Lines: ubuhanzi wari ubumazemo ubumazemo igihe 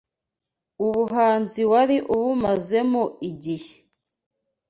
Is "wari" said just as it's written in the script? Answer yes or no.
yes